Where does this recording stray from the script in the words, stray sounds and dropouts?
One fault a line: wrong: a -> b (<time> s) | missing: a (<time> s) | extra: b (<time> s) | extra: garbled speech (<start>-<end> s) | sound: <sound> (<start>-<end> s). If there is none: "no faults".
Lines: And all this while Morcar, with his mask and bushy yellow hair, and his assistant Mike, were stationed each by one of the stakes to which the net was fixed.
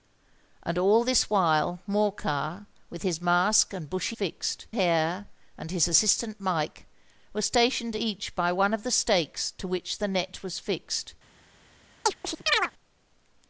wrong: yellow -> fixed (4.1 s)
sound: chirp (12.1-12.7 s)